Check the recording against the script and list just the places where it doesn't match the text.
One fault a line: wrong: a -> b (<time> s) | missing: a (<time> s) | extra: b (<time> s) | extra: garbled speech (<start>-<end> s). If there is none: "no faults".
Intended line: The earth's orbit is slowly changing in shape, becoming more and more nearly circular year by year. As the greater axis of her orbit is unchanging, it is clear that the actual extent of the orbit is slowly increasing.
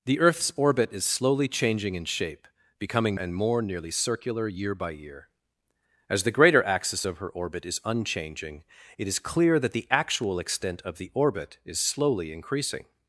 missing: more (3.2 s)